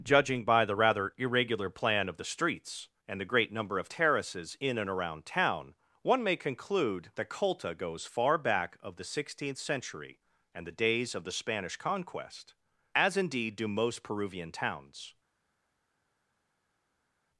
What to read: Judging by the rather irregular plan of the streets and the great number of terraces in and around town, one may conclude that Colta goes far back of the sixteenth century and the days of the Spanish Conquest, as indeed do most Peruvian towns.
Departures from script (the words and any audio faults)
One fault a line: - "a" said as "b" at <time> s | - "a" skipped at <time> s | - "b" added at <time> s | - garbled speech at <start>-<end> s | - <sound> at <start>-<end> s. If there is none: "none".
none